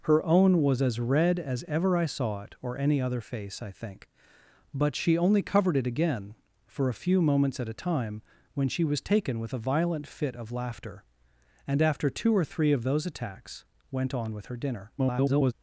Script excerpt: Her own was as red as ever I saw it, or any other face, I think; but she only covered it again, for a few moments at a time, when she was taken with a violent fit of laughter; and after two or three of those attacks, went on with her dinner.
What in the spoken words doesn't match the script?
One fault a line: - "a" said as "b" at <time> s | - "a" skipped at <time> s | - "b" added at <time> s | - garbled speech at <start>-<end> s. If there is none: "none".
- garbled speech at 15.0-15.5 s